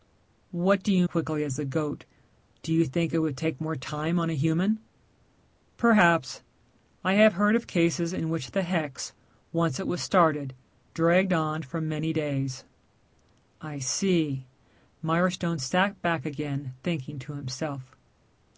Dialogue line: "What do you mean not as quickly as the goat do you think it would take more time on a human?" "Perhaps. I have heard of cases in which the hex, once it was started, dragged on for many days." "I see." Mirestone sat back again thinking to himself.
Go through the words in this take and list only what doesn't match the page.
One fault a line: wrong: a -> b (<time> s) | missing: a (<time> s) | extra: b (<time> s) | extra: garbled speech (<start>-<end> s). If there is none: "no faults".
missing: mean not as (1.1 s)